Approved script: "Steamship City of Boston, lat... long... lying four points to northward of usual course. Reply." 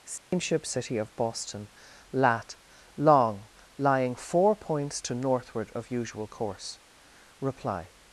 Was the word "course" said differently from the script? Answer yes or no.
no